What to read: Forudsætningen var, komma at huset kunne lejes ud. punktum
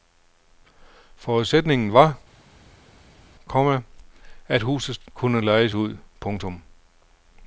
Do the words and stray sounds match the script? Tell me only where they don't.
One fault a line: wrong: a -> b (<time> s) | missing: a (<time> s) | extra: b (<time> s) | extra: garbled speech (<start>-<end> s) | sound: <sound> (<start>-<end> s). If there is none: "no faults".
no faults